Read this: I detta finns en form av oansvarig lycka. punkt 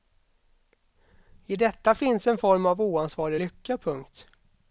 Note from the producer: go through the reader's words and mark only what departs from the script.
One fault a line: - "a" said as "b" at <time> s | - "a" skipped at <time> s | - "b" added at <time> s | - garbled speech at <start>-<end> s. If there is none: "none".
none